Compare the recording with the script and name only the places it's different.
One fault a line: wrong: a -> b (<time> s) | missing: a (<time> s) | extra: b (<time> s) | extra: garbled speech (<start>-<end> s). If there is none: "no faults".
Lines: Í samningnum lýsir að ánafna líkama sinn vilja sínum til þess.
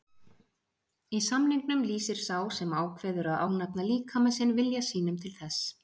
extra: sá sem ákveður (2.2 s)